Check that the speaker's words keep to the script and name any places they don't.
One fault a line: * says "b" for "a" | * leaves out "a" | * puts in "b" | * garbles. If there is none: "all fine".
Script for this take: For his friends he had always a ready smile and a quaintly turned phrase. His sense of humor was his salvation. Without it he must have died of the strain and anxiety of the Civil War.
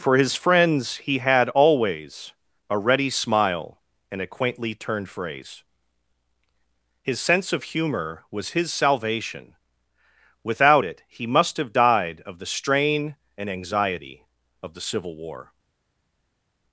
all fine